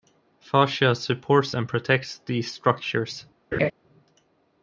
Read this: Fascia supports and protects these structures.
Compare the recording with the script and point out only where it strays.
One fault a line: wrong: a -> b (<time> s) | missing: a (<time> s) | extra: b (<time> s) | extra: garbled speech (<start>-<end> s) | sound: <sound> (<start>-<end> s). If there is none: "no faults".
sound: laugh (3.5-3.7 s)